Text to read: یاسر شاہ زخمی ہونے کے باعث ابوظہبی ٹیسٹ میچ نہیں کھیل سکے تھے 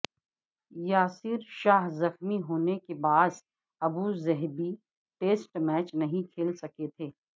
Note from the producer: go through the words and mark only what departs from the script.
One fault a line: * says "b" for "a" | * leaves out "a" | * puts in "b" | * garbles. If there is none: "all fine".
all fine